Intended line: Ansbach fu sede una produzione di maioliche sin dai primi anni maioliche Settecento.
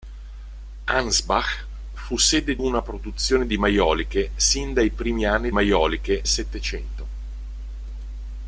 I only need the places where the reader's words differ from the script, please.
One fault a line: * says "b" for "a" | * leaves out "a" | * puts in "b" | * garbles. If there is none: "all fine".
all fine